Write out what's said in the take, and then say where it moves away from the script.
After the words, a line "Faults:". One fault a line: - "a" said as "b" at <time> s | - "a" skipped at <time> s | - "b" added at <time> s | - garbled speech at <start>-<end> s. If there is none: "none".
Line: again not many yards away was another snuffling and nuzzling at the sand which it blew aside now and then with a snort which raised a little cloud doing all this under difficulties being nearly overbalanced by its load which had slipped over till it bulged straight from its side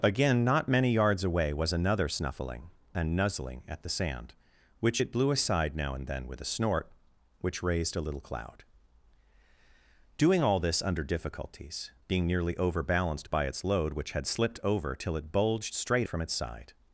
again not many yards away was another snuffling and nuzzling at the sand which it blew aside now and then with a snort which raised a little cloud doing all this under difficulties being nearly overbalanced by its load which had slipped over till it bulged straight from its side
Faults:
none